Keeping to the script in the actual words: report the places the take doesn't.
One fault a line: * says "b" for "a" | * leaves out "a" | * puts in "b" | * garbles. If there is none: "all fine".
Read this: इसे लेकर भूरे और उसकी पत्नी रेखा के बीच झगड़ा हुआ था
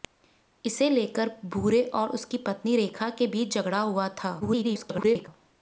* garbles